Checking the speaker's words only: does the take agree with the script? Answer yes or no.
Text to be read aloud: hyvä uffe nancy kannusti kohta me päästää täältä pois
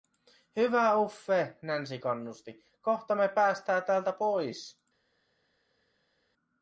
yes